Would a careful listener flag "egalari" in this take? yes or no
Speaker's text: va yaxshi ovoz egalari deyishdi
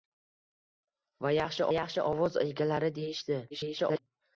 no